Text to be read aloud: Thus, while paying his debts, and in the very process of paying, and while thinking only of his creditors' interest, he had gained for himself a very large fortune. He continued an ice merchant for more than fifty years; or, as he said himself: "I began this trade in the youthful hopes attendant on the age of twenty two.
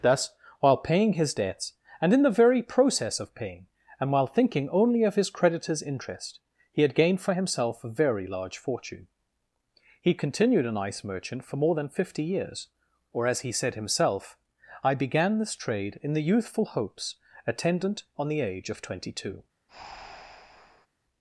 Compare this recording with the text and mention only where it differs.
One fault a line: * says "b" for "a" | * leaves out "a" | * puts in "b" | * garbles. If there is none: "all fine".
all fine